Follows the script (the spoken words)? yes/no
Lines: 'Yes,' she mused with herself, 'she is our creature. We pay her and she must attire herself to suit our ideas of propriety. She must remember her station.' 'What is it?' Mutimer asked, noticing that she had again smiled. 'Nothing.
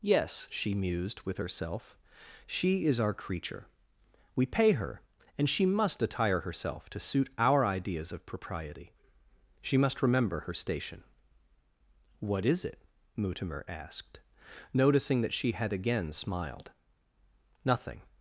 yes